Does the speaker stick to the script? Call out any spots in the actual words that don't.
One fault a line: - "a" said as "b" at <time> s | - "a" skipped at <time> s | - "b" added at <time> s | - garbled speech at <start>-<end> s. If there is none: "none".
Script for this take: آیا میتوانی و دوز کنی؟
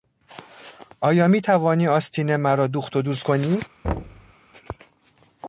- "آستین مرا دوخت" added at 1.9 s